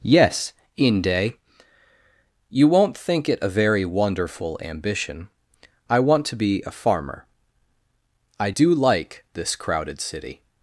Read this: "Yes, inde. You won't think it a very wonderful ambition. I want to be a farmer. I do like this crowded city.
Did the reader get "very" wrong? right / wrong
right